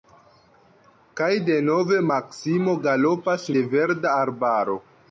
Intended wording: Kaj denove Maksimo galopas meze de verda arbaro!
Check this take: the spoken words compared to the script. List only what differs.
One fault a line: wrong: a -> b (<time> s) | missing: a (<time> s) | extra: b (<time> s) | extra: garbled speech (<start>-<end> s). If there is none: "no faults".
missing: meze (3.5 s)